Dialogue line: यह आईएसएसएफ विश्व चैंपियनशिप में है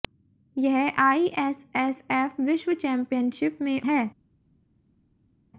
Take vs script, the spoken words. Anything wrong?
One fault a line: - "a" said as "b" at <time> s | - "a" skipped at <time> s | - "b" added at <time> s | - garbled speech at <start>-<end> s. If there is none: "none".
none